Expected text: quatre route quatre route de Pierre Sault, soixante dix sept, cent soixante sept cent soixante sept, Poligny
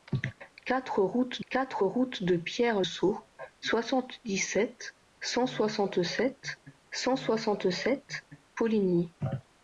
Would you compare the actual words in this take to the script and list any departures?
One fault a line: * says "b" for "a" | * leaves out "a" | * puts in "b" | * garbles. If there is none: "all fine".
all fine